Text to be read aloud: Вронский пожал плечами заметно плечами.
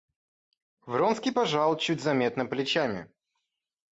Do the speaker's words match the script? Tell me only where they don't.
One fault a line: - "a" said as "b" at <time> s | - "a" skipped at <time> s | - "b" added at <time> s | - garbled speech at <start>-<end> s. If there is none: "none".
- "плечами" said as "чуть" at 1.8 s